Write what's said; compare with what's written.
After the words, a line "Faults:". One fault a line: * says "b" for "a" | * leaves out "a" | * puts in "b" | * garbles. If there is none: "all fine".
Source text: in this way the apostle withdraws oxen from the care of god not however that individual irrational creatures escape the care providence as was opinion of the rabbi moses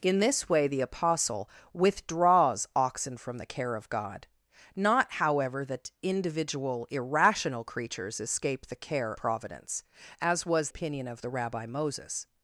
in this way the apostle withdraws oxen from the care of god not however that individual irrational creatures escape the care providence as was opinion of the rabbi moses
Faults:
all fine